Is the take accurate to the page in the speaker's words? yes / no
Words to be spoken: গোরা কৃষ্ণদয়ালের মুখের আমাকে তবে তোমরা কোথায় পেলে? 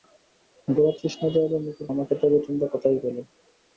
yes